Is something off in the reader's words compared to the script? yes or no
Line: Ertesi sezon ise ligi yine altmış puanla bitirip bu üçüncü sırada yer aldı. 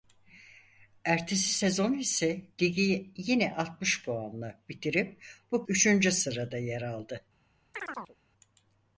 no